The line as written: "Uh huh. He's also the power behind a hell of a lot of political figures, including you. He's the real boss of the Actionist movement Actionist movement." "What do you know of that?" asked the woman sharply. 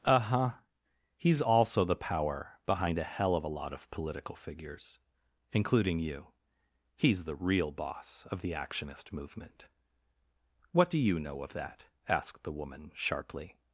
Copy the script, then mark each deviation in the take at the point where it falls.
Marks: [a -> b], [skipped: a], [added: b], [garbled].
"Uh huh. He's also the power behind a hell of a lot of political figures, including you. He's the real boss of the Actionist movement [skipped: Actionist movement."] "What do you know of that?" asked the woman sharply.